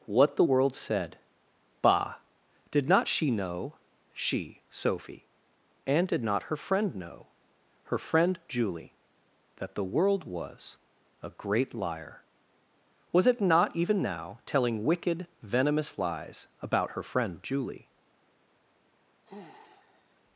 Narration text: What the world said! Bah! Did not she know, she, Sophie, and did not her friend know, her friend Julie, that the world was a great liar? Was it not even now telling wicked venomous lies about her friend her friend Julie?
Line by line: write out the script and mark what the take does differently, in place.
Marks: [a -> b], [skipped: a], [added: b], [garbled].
What the world said! Bah! Did not she know, she, Sophie, and did not her friend know, her friend Julie, that the world was a great liar? Was it not even now telling wicked venomous lies about her friend [skipped: her friend] Julie?